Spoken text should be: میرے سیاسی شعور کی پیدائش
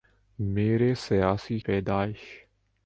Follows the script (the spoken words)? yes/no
no